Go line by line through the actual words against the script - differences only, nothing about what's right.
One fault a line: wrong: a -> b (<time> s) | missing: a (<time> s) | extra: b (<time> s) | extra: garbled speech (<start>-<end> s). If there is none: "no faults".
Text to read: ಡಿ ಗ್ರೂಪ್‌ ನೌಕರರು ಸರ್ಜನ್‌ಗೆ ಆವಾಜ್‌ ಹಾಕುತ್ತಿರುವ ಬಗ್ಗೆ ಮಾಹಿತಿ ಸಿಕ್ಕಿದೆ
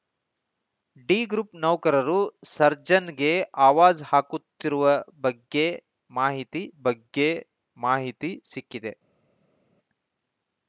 extra: ಬಗ್ಗೆ ಮಾಹಿತಿ (6.8 s)